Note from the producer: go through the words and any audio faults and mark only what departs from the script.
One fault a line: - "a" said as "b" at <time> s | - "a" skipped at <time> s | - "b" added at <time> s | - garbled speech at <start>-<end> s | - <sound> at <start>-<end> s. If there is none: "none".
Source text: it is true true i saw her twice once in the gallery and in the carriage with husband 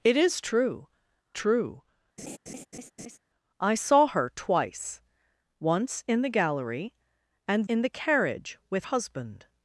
- laugh at 2.2-3.2 s